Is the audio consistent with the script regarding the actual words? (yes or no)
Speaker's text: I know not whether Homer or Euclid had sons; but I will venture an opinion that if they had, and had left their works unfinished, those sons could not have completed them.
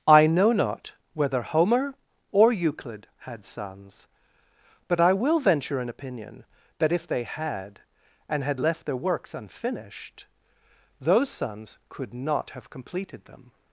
yes